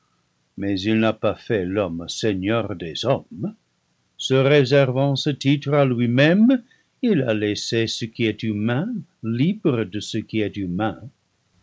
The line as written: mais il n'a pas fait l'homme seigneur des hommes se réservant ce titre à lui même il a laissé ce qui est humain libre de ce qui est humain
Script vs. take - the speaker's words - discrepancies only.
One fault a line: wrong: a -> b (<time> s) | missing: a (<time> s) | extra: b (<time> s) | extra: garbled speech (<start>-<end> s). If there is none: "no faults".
no faults